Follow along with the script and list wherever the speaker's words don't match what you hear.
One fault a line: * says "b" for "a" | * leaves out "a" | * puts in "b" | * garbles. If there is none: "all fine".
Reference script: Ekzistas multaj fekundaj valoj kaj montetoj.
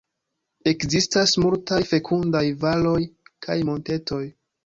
all fine